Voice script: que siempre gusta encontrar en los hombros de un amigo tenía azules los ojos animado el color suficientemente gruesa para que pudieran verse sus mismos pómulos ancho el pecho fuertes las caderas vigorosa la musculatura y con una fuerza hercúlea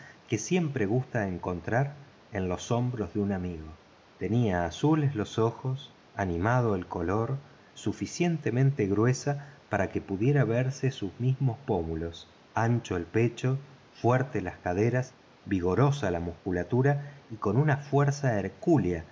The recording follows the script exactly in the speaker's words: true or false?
true